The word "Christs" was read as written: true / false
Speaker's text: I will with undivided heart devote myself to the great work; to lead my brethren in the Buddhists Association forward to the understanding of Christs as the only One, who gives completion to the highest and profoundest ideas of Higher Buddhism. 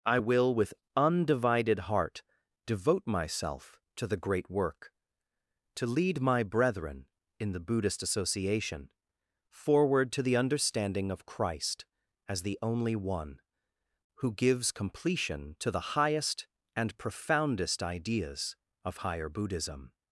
false